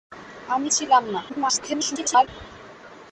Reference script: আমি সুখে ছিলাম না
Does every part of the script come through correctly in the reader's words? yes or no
no